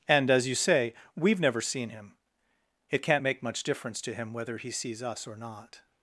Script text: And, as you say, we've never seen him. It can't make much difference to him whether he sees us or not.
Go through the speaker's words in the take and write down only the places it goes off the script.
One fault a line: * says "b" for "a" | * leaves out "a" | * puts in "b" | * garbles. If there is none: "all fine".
all fine